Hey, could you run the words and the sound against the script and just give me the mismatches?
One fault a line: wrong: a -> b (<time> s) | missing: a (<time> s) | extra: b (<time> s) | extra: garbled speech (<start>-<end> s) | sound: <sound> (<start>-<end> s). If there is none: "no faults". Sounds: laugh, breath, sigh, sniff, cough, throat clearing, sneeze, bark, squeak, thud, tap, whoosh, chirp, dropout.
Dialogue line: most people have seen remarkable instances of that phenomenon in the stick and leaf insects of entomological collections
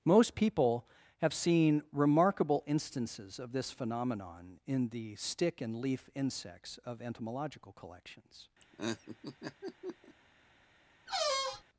wrong: that -> this (3.5 s)
sound: laugh (8.6-10.2 s)
sound: squeak (11.1-11.6 s)